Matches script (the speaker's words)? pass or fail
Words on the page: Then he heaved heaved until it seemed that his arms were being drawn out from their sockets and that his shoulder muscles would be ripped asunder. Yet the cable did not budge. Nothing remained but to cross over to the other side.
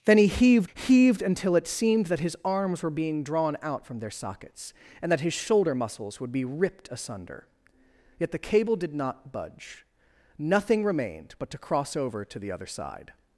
pass